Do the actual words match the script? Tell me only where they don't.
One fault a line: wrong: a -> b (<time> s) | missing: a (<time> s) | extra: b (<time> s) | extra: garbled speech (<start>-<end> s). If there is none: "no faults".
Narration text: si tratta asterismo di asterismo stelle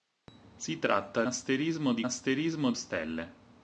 no faults